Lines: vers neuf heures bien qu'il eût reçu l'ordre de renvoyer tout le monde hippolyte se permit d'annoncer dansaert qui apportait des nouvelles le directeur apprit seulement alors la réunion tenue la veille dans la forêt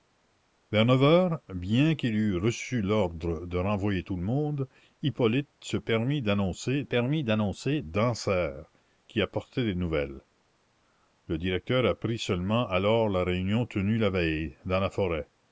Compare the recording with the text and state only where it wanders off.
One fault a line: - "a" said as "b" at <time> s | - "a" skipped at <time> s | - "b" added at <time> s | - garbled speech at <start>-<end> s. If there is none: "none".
- "permit d'annoncer" added at 6.8 s